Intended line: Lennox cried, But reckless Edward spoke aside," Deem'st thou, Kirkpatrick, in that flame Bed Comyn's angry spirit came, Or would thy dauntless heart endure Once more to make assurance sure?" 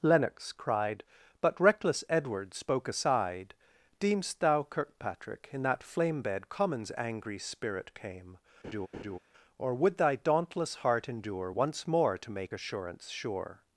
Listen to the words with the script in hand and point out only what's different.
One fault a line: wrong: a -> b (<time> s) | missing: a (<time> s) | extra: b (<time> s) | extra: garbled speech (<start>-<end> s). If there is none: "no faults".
no faults